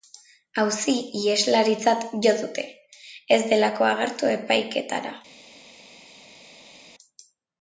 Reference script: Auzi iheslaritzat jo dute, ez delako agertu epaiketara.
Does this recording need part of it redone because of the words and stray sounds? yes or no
no